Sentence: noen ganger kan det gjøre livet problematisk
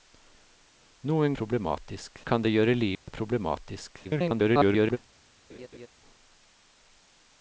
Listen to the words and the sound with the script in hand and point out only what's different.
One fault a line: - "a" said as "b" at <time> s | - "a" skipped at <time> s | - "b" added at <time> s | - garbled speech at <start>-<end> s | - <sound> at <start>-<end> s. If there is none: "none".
- "ganger" said as "problematisk" at 1.4 s
- dropout at 3.0-3.1 s
- garbled speech at 4.0-5.0 s
- laugh at 5.5-5.9 s